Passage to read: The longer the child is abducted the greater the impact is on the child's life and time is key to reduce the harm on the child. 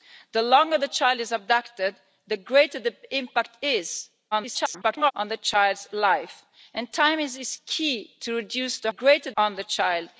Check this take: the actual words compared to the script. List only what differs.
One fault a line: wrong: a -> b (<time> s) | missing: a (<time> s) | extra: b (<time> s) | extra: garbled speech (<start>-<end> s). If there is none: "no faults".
extra: garbled speech (4.3-5.1 s)
wrong: harm -> greater (8.9 s)